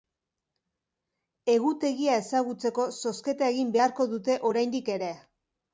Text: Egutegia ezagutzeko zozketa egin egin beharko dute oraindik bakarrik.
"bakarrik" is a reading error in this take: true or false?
true